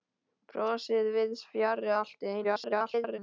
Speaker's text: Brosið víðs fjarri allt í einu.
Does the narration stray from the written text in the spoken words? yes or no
yes